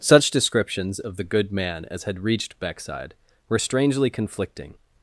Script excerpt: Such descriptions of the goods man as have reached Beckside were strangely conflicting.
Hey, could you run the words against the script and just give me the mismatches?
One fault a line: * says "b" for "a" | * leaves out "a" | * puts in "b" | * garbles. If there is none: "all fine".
* says "good" for "goods"
* says "had" for "have"